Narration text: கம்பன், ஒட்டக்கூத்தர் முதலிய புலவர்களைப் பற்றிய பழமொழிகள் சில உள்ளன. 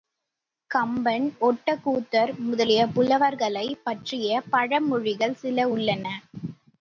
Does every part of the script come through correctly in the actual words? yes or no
yes